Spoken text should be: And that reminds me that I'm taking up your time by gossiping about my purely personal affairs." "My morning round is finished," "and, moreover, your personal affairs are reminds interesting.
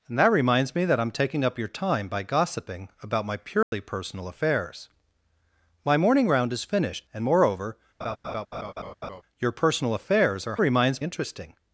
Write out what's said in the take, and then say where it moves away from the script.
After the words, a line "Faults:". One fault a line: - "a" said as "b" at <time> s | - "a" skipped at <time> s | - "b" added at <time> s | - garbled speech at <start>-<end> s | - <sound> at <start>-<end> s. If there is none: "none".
And that reminds me that I'm taking up your time by gossiping about my purely personal affairs." "My morning round is finished," "and, moreover, your personal affairs are reminds interesting.
Faults:
- dropout at 3.6-3.7 s
- laugh at 8.0-9.2 s